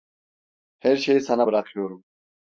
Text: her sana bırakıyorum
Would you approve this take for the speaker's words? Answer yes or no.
no